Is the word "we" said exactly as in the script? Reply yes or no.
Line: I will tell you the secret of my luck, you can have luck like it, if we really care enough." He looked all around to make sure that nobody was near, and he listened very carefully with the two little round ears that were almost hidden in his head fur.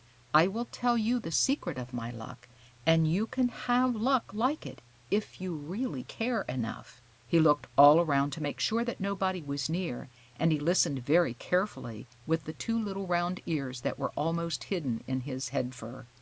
no